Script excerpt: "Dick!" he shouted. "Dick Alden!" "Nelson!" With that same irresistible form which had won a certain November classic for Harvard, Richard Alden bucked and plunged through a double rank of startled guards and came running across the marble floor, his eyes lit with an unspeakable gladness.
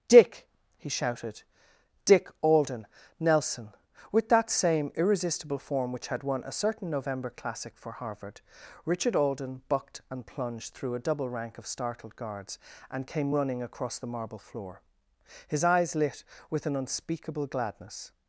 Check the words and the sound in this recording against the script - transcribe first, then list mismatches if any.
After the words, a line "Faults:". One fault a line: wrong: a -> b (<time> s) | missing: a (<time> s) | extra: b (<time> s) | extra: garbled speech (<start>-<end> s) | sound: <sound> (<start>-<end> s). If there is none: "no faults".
"Dick!" he shouted. "Dick Alden!" "Nelson!" With that same irresistible form which had won a certain November classic for Harvard, Richard Alden bucked and plunged through a double rank of startled guards and came running across the marble floor, his eyes lit with an unspeakable gladness.
Faults:
no faults